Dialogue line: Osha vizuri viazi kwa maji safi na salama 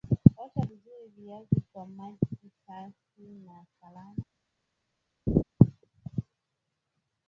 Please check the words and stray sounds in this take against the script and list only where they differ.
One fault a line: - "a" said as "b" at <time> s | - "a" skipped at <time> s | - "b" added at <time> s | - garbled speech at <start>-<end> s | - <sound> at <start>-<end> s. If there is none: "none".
- laugh at 5.3-5.4 s